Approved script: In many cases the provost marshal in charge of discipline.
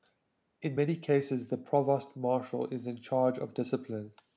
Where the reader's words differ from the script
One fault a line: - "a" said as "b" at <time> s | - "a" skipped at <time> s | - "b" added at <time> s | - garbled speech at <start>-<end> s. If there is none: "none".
- "is" added at 2.7 s